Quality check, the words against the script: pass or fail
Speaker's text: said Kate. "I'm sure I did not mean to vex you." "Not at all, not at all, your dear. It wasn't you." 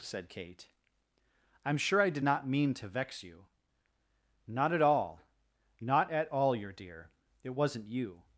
pass